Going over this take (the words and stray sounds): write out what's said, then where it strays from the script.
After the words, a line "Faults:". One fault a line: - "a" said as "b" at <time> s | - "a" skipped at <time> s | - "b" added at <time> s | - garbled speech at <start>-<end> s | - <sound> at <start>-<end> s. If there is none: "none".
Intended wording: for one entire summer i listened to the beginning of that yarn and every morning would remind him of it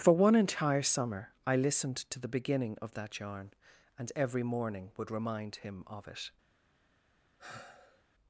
for one entire summer i listened to the beginning of that yarn and every morning would remind him of it
Faults:
- sigh at 7.4-8.0 s